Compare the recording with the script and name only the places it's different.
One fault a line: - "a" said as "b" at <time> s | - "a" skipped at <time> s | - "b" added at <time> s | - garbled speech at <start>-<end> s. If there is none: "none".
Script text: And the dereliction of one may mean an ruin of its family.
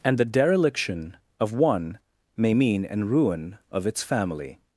none